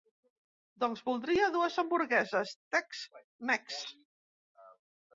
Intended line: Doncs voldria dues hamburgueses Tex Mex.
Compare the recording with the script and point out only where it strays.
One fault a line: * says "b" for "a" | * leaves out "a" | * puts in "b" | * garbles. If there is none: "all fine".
all fine